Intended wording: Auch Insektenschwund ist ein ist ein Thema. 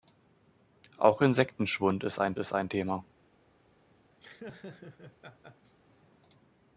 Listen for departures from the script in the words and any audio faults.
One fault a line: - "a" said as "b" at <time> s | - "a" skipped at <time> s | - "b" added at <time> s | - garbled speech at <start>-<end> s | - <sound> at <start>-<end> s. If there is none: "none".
- laugh at 4.2-5.7 s